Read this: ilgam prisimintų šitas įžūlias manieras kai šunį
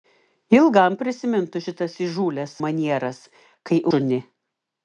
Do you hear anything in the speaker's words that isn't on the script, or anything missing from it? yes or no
no